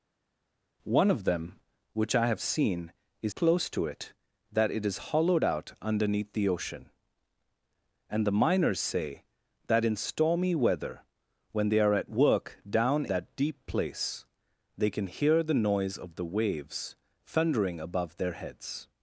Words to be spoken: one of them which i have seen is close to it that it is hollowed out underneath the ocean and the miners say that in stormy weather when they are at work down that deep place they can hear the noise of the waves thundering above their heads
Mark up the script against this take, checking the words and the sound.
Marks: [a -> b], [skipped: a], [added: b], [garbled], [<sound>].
one of them which i have seen is close to it that it is hollowed out underneath the ocean and the miners say that in stormy weather when they are at work down that deep place they can hear the noise of the waves thundering above their heads